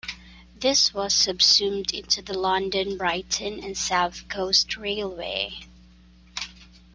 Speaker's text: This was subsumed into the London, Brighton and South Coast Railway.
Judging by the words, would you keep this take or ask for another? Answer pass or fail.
pass